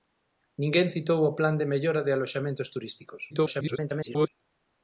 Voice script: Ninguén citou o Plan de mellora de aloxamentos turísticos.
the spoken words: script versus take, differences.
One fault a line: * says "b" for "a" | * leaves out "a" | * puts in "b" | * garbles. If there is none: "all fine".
* garbles